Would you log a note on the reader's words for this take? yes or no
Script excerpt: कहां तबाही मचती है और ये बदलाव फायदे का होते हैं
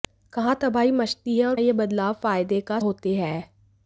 no